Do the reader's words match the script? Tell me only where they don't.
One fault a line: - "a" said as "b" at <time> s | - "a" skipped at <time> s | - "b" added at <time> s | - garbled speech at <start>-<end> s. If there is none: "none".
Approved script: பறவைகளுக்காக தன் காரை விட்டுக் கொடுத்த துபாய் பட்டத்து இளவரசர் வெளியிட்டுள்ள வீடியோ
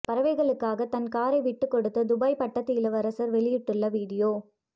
none